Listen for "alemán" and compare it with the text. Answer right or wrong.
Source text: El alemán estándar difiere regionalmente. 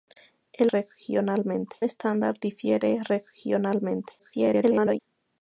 wrong